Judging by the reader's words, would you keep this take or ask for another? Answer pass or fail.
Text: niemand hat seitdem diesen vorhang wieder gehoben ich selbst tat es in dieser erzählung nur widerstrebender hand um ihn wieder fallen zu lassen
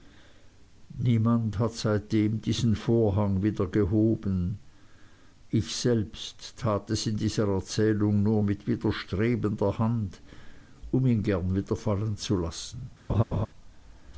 fail